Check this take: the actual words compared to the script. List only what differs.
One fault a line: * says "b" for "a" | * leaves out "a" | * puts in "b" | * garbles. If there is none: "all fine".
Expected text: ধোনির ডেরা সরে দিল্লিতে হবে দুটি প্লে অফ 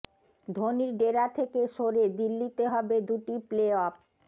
* puts in "থেকে"